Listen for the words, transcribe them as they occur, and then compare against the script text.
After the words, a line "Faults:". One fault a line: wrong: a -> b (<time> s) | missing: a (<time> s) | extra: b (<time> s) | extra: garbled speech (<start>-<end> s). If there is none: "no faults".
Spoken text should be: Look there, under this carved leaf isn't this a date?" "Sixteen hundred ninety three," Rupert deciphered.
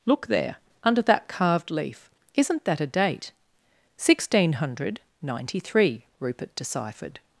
Look there, under that carved leaf isn't that a date?" "Sixteen hundred ninety three," Rupert deciphered.
Faults:
wrong: this -> that (1.0 s)
wrong: this -> that (2.6 s)